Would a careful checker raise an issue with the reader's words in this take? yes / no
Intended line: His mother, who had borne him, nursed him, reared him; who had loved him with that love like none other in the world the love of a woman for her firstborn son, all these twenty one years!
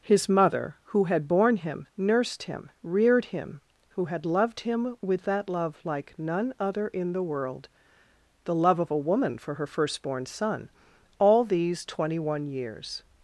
no